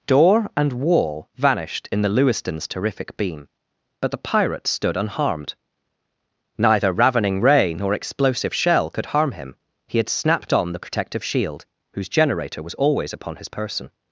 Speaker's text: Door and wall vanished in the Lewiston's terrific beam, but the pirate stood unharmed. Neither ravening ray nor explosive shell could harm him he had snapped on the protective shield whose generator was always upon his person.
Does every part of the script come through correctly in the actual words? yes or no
yes